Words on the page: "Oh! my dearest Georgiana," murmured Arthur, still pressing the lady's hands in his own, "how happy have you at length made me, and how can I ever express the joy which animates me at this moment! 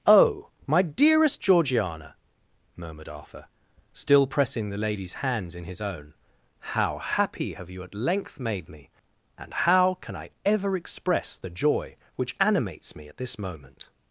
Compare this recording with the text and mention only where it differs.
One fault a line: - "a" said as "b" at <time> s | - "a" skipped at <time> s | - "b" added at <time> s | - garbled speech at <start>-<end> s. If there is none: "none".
none